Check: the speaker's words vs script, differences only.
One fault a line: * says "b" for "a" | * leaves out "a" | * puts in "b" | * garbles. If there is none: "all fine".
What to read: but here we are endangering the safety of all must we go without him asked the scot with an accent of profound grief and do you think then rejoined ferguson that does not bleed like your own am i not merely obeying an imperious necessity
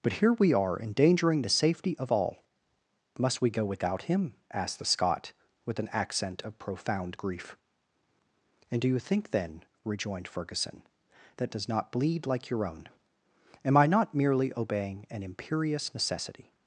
all fine